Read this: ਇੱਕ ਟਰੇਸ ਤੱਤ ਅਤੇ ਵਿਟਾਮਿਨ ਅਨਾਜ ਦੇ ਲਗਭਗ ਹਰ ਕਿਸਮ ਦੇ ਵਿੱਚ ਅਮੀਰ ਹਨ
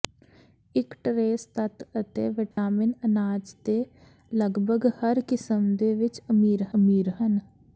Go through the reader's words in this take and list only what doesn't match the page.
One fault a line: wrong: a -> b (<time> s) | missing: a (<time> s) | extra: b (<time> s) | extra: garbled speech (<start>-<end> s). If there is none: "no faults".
extra: ਅਮੀਰ (6.8 s)